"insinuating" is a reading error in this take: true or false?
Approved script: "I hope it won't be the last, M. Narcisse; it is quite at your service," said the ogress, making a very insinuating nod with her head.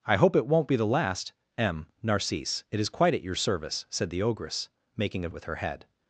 true